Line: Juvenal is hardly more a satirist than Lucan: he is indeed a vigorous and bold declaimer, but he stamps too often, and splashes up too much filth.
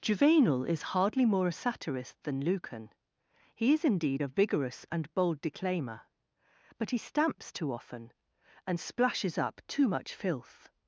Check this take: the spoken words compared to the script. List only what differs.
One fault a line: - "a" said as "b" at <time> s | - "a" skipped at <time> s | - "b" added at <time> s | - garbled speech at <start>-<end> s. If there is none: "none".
none